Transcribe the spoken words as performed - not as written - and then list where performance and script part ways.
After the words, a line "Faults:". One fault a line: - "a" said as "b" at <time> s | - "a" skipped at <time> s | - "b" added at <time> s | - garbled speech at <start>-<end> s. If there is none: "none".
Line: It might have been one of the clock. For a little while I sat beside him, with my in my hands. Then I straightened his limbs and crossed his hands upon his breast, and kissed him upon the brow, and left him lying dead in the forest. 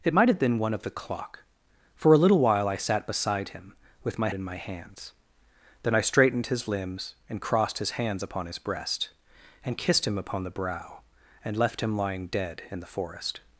It might have been one of the clock. For a little while I sat beside him, with my in my hands. Then I straightened his limbs and crossed his hands upon his breast, and kissed him upon the brow, and left him lying dead in the forest.
Faults:
none